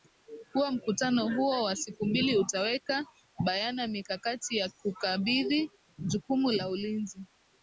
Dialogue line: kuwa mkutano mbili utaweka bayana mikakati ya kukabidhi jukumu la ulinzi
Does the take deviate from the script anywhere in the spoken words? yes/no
yes